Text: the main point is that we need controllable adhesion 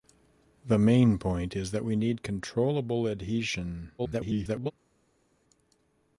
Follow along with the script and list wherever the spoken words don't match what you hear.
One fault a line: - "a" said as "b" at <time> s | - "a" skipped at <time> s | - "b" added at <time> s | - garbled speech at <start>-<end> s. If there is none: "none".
- garbled speech at 4.0-4.7 s